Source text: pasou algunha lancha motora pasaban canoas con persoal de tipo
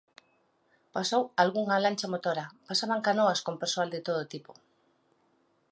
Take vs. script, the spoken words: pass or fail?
fail